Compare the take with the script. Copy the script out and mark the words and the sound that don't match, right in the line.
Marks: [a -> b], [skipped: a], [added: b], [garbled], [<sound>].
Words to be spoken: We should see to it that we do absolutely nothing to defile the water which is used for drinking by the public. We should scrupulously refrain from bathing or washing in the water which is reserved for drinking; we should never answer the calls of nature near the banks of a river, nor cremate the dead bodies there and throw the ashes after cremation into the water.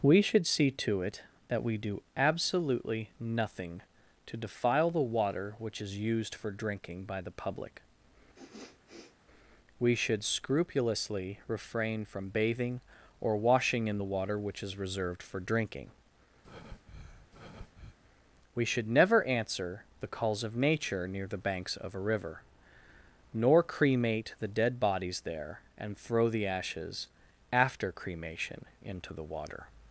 We should see to it that we do absolutely nothing to defile the water which is used for drinking by the public. [sniff] We should scrupulously refrain from bathing or washing in the water which is reserved for drinking; [breath] we should never answer the calls of nature near the banks of a river, nor cremate the dead bodies there and throw the ashes after cremation into the water.